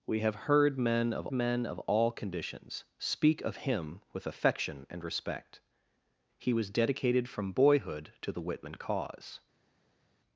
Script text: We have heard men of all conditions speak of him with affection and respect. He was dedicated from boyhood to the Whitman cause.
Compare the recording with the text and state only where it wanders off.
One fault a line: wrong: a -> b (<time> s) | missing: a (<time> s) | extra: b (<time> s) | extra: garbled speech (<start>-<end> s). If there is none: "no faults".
extra: men of (1.3 s)